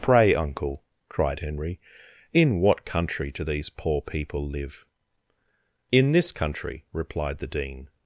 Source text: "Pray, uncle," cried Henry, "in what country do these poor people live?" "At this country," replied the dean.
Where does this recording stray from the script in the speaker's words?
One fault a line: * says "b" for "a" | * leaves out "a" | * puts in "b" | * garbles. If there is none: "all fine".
* says "In" for "At"